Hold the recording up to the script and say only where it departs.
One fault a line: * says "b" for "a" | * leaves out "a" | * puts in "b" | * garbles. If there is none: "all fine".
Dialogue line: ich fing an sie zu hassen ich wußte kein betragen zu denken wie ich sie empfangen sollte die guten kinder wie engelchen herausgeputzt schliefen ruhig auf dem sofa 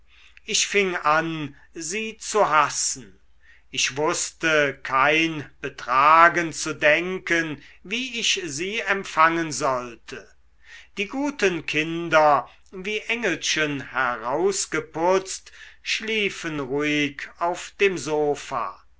all fine